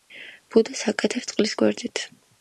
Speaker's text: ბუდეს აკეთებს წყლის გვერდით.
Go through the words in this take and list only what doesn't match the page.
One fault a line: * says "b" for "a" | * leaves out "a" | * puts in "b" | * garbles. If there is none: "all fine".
all fine